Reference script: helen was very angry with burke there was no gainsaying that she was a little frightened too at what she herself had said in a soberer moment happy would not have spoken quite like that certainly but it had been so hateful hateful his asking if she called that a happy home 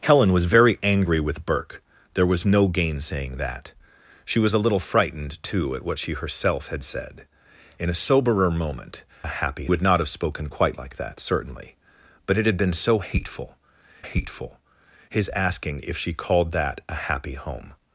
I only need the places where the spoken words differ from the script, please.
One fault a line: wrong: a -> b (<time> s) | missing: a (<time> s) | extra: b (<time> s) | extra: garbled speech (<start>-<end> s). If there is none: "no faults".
no faults